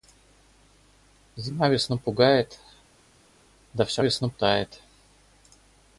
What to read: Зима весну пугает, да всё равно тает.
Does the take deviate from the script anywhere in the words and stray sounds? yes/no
yes